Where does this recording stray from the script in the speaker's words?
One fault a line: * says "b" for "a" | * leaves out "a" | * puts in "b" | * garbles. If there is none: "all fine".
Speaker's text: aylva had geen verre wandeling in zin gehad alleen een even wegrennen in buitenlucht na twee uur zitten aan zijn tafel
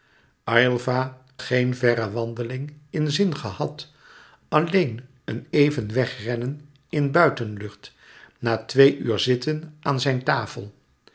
* leaves out "had"